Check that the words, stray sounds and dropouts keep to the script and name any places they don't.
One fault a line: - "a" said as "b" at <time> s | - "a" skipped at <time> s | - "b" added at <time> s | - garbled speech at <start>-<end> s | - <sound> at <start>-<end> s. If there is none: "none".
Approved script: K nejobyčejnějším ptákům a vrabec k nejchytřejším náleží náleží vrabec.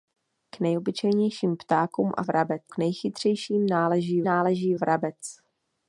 none